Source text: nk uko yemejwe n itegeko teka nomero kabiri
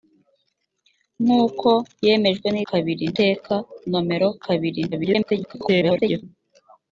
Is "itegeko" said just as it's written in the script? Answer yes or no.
no